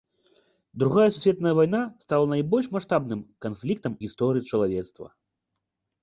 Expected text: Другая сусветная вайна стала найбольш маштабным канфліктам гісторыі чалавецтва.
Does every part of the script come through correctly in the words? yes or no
yes